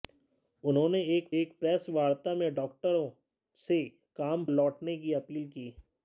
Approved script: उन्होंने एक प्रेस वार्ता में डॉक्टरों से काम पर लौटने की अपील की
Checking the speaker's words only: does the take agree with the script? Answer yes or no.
no